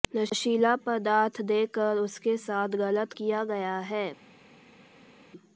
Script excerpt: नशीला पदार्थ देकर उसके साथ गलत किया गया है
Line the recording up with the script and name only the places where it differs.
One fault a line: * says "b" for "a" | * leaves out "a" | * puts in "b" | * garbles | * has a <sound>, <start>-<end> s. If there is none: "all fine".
all fine